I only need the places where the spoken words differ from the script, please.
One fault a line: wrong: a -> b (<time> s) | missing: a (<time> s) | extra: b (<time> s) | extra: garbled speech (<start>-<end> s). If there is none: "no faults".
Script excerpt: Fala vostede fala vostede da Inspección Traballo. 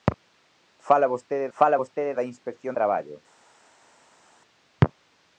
no faults